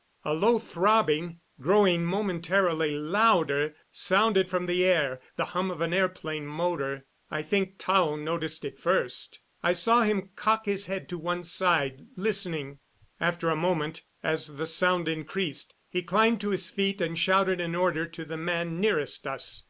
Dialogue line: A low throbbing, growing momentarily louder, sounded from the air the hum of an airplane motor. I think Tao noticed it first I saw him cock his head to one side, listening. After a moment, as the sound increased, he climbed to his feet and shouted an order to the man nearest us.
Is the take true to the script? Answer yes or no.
yes